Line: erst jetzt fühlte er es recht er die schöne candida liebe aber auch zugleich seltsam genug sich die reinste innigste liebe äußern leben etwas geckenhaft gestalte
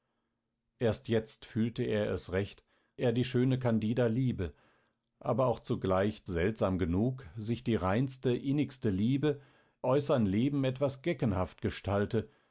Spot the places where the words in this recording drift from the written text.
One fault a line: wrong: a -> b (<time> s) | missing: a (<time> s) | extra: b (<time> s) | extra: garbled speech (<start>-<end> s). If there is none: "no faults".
no faults